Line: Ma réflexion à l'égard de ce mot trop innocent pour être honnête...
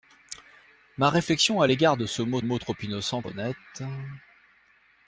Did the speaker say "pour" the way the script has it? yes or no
no